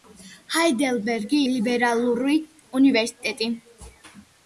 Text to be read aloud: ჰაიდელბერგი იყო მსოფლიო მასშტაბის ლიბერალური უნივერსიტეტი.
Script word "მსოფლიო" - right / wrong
wrong